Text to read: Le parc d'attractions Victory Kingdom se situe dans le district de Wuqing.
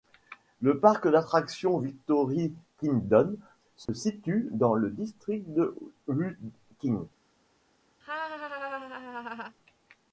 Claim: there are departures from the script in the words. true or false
false